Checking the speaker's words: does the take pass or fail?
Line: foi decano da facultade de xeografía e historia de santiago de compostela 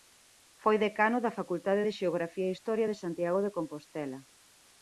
pass